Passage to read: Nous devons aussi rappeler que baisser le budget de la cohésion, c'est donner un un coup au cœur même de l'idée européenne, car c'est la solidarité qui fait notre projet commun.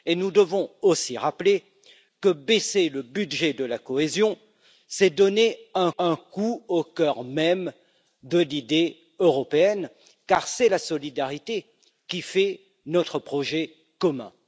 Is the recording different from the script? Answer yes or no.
no